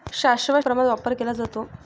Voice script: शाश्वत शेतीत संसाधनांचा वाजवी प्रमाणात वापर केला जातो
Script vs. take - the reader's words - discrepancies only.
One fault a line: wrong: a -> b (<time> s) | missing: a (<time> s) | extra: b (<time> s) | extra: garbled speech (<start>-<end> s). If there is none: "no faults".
missing: शेतीत संसाधनांचा वाजवी (0.6 s)